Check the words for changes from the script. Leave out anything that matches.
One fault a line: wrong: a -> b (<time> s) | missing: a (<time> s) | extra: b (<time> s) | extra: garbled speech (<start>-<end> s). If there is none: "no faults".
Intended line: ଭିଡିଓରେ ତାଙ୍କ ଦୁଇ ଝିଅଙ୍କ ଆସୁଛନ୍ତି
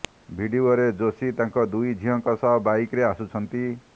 extra: ଯୋଶୀ (1.0 s)
extra: ସହ ବାଇକରେ (2.4 s)